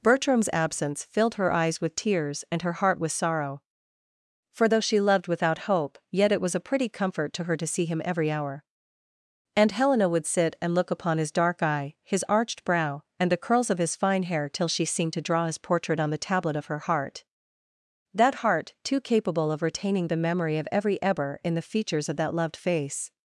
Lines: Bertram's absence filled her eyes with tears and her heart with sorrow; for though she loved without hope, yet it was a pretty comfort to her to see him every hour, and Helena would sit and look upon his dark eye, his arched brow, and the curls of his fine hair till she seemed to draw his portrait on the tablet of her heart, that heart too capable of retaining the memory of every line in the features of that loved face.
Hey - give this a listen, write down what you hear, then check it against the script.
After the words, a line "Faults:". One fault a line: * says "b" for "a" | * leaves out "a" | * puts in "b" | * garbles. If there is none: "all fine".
Bertram's absence filled her eyes with tears and her heart with sorrow; for though she loved without hope, yet it was a pretty comfort to her to see him every hour, and Helena would sit and look upon his dark eye, his arched brow, and the curls of his fine hair till she seemed to draw his portrait on the tablet of her heart, that heart too capable of retaining the memory of every ebber in the features of that loved face.
Faults:
* says "ebber" for "line"